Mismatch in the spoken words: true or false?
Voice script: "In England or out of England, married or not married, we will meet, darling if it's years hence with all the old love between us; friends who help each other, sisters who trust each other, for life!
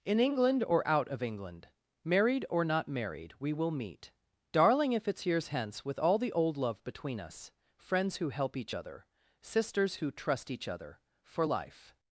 false